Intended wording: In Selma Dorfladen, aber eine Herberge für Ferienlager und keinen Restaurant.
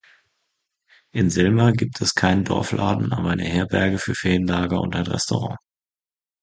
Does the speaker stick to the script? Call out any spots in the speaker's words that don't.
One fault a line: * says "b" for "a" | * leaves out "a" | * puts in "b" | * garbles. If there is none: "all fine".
* puts in "gibt es keinen"
* says "ein" for "keinen"